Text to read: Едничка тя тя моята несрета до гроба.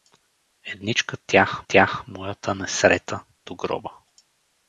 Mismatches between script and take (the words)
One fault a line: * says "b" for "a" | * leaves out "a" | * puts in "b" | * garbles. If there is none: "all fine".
all fine